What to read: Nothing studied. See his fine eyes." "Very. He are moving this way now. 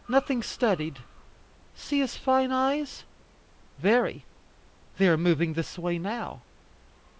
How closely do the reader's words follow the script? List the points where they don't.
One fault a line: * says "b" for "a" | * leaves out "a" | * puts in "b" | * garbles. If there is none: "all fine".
* says "They" for "He"